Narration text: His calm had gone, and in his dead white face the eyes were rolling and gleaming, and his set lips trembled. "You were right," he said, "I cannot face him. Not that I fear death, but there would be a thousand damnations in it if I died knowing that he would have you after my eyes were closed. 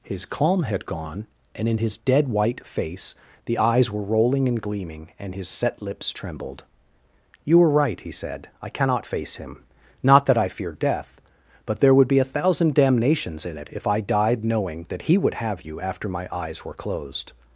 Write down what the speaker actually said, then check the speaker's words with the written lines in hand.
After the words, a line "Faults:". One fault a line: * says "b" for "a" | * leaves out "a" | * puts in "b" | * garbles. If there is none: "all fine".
His calm had gone, and in his dead white face the eyes were rolling and gleaming, and his set lips trembled. "You were right," he said, "I cannot face him. Not that I fear death, but there would be a thousand damnations in it if I died knowing that he would have you after my eyes were closed.
Faults:
all fine